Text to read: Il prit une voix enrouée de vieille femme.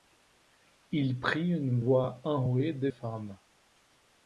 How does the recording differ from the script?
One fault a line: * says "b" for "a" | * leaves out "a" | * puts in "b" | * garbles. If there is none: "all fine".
* leaves out "vieille"